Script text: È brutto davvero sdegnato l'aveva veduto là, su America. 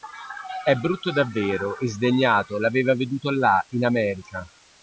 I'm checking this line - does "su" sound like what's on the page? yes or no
no